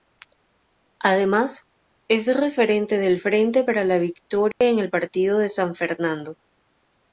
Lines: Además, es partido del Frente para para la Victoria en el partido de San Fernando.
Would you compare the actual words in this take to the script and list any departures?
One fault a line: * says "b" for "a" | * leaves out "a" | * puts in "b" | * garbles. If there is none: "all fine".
* says "referente" for "partido"
* leaves out "para"